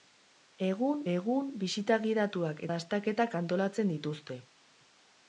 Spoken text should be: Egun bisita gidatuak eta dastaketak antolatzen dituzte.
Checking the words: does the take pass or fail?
fail